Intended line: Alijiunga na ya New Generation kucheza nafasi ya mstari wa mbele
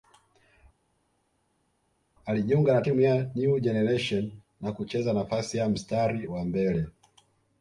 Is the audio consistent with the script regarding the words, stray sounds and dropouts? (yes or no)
no